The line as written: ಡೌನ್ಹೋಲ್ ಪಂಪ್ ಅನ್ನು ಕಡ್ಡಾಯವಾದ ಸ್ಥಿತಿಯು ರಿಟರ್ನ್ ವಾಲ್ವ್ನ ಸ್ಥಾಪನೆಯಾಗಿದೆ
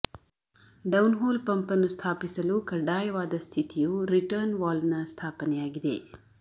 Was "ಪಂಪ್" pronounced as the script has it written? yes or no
yes